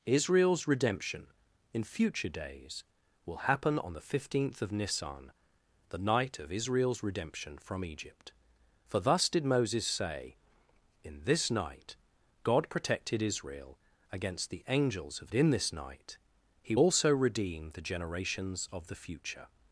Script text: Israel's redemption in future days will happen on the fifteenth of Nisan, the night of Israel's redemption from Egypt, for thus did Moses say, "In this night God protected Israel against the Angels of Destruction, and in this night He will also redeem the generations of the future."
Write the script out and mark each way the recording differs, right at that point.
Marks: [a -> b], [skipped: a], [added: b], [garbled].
Israel's redemption in future days will happen on the fifteenth of Nisan, the night of Israel's redemption from Egypt, for thus did Moses say, "In this night God protected Israel against the Angels of [skipped: Destruction, and] in this night He [skipped: will] also redeem the generations of the future."